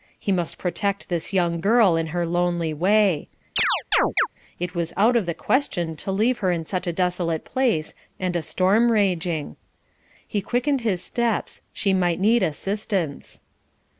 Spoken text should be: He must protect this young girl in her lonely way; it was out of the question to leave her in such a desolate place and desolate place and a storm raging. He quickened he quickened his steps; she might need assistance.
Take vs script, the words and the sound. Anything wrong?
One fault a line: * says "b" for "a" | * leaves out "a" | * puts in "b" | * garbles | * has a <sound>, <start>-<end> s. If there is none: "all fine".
* has a chirp, 3.6-4.3 s
* leaves out "desolate place and"
* leaves out "he quickened"